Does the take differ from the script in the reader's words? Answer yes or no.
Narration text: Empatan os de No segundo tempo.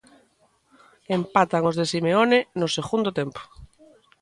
yes